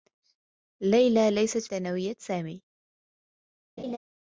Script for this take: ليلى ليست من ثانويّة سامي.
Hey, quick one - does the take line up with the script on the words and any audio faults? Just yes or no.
no